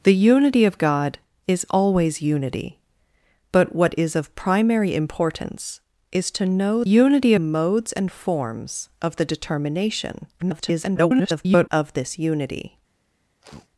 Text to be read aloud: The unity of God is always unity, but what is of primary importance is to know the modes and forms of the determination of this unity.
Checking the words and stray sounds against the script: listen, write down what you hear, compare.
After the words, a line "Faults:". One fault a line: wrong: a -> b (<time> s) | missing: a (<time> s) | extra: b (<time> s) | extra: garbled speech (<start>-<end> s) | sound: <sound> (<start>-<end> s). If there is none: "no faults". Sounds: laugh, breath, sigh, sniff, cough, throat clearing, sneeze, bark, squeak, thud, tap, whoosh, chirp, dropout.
The unity of God is always unity, but what is of primary importance is to know unity modes and forms of the determination [garbled] of this unity.
Faults:
wrong: the -> unity (6.8 s)
extra: garbled speech (10.4-11.7 s)
sound: sniff (13.4-13.7 s)